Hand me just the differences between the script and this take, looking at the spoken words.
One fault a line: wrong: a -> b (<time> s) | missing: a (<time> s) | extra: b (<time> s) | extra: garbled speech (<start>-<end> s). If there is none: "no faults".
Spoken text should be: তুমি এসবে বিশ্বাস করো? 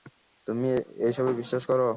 no faults